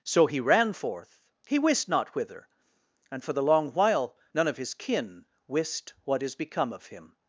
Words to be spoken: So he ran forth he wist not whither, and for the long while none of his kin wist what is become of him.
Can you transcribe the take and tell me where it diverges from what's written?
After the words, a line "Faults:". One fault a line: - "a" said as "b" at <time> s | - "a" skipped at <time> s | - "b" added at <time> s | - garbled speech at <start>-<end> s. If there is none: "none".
So he ran forth he wist not whither, and for the long while none of his kin wist what is become of him.
Faults:
none